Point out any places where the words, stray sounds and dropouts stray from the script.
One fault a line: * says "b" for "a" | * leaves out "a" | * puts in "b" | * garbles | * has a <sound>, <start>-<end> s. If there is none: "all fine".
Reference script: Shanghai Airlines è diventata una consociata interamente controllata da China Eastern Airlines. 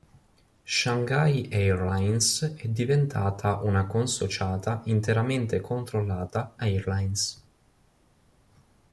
* leaves out "da China Eastern"